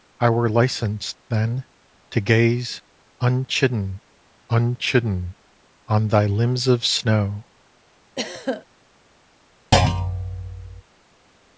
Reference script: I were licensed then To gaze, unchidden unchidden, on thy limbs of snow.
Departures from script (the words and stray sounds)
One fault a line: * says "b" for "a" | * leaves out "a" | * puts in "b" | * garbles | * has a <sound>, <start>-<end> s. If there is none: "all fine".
* has a throat clearing, 8.2-8.7 s
* has a thud, 9.7-10.8 s